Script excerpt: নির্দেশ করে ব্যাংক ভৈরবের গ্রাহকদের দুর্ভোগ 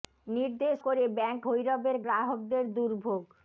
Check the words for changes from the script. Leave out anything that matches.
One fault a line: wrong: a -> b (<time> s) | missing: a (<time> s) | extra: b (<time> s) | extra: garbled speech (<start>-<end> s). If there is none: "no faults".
no faults